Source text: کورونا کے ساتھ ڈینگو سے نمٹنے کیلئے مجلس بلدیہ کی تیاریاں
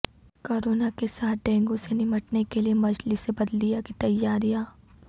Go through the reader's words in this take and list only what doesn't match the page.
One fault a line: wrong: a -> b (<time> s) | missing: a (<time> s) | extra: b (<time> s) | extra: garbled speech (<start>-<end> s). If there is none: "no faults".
no faults